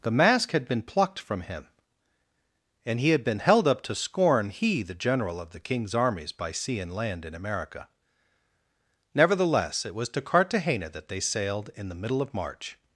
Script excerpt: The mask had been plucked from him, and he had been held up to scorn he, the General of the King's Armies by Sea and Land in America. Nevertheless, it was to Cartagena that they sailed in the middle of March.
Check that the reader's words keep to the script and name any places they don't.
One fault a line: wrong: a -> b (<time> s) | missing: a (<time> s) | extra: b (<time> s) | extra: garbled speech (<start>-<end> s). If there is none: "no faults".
no faults